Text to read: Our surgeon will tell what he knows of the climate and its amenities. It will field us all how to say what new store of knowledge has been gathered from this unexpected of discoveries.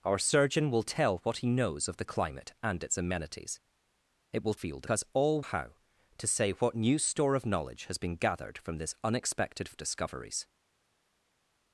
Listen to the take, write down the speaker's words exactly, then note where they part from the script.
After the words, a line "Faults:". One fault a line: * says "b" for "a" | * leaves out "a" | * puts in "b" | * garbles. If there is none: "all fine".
Our surgeon will tell what he knows of the climate and its amenities. It will field us all how to say what new store of knowledge has been gathered from this unexpected of discoveries.
Faults:
all fine